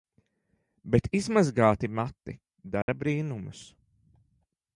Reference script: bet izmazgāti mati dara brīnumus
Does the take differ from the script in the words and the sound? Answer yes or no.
yes